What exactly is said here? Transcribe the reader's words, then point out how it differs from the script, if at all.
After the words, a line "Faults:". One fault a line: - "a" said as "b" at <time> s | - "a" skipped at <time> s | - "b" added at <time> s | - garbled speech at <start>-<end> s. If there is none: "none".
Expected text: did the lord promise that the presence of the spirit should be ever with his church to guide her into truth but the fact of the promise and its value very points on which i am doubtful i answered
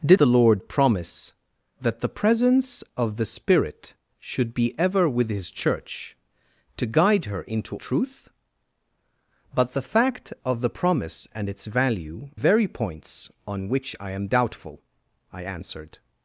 did the lord promise that the presence of the spirit should be ever with his church to guide her into truth but the fact of the promise and its value very points on which i am doubtful i answered
Faults:
none